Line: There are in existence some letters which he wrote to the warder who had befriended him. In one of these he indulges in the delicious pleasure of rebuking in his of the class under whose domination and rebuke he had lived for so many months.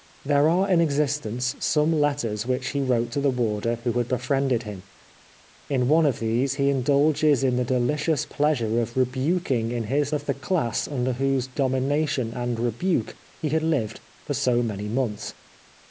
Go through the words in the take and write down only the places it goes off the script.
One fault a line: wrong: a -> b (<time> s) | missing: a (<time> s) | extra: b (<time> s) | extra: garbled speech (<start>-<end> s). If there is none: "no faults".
no faults